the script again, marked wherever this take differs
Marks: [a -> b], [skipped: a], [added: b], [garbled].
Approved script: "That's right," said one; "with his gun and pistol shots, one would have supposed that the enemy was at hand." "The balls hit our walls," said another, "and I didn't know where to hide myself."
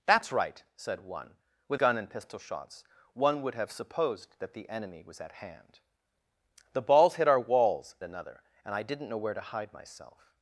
"That's right," said one; "with [skipped: his] gun and pistol shots, one would have supposed that the enemy was at hand." "The balls hit our walls," [skipped: said] another, "and I didn't know where to hide myself."